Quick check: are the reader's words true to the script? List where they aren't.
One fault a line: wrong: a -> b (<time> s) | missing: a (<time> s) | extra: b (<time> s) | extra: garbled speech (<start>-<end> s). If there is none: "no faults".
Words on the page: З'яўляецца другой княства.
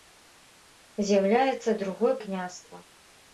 no faults